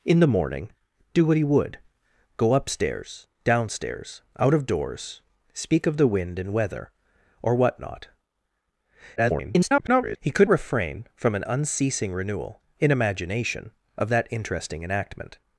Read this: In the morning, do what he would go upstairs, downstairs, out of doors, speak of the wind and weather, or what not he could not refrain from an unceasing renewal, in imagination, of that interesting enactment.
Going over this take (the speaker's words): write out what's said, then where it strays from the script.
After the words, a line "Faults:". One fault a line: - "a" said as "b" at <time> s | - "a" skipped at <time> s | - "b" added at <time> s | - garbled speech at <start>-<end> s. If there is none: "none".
In the morning, do what he would go upstairs, downstairs, out of doors, speak of the wind and weather, or what not [garbled] he could refrain from an unceasing renewal, in imagination, of that interesting enactment.
Faults:
- garbled speech at 9.2-10.2 s
- "not" skipped at 10.5 s